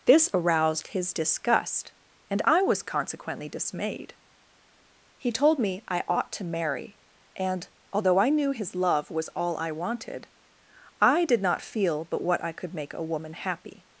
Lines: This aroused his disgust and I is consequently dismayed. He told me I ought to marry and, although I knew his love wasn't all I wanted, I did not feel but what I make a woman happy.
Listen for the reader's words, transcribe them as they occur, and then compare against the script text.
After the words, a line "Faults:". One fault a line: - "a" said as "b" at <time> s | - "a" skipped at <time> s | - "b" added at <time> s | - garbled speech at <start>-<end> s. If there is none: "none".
This aroused his disgust and I was consequently dismayed. He told me I ought to marry and, although I knew his love was all I wanted, I did not feel but what I could make a woman happy.
Faults:
- "is" said as "was" at 2.6 s
- "wasn't" said as "was" at 9.1 s
- "could" added at 12.5 s